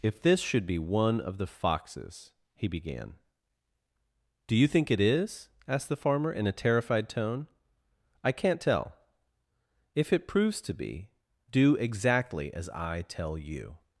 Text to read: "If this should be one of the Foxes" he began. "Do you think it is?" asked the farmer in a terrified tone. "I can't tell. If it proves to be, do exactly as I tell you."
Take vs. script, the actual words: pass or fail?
pass